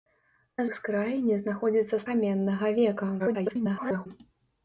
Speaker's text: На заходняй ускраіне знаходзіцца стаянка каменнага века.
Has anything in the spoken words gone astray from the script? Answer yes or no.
yes